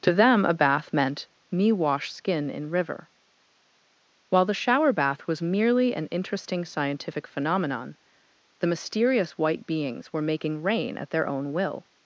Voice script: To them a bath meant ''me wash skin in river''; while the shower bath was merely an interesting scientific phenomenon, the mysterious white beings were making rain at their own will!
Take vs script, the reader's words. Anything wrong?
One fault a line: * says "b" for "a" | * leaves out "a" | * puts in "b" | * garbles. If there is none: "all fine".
all fine